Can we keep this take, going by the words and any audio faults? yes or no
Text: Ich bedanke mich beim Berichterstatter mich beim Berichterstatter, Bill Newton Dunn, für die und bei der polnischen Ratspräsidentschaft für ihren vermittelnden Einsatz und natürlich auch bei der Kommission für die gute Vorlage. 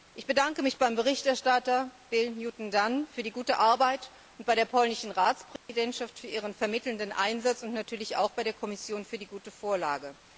no